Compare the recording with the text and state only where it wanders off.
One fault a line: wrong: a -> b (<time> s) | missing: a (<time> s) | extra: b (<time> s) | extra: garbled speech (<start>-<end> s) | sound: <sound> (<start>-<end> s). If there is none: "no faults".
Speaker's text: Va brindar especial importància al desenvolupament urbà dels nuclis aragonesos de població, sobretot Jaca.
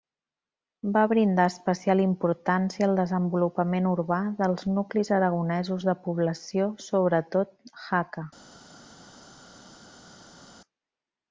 no faults